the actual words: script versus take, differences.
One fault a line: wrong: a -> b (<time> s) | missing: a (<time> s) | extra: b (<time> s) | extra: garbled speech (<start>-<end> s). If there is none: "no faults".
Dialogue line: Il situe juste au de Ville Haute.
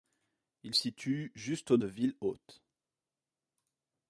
no faults